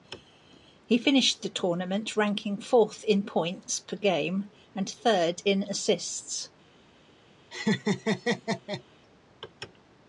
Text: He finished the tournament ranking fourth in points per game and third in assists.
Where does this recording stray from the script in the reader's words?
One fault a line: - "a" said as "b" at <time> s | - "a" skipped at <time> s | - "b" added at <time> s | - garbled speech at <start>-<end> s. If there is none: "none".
none